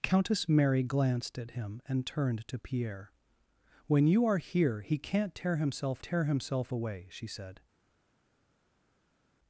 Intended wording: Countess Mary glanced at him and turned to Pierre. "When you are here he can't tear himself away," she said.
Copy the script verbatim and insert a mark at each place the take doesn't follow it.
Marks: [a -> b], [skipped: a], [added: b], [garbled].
Countess Mary glanced at him and turned to Pierre. "When you are here he can't tear himself [added: tear himself] away," she said.